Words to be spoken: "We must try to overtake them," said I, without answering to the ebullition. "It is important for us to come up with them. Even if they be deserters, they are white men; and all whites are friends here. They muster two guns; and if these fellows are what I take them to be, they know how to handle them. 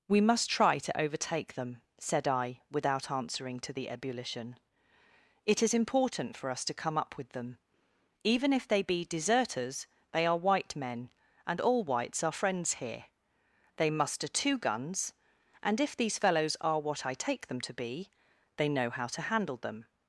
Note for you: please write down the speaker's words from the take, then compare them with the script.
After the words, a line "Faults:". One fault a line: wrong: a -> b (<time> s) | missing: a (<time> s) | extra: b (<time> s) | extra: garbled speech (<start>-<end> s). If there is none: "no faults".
"We must try to overtake them," said I, without answering to the ebullition. "It is important for us to come up with them. Even if they be deserters, they are white men; and all whites are friends here. They muster two guns; and if these fellows are what I take them to be, they know how to handle them.
Faults:
no faults